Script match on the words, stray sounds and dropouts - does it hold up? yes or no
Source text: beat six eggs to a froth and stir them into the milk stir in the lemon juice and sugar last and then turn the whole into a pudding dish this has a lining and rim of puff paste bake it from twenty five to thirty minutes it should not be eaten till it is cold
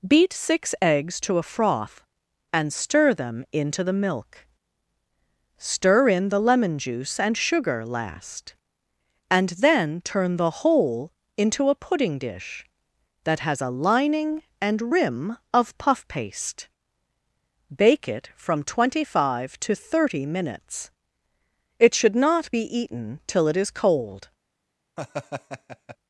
no